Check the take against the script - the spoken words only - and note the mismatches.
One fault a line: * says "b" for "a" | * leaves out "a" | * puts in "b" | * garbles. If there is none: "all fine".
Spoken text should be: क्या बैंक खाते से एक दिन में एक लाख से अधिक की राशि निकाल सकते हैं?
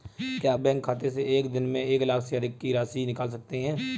all fine